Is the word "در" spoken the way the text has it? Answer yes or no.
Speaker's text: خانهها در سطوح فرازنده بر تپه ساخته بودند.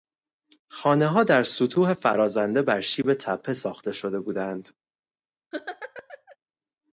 yes